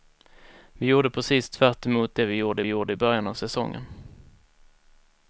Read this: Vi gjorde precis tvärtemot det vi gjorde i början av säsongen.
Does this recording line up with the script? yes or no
no